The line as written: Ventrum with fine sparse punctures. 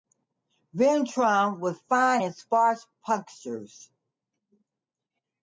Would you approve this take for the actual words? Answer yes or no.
no